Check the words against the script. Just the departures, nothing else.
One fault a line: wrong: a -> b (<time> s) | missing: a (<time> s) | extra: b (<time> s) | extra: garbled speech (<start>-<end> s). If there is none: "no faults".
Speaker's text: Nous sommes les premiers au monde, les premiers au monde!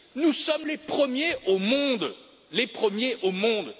no faults